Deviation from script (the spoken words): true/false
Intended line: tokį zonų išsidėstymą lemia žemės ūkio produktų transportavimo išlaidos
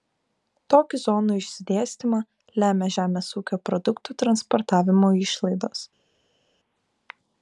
false